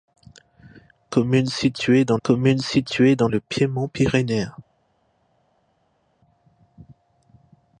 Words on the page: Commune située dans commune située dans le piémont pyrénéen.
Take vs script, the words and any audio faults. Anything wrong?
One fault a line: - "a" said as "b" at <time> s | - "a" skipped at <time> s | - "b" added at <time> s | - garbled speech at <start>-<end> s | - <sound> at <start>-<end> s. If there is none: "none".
none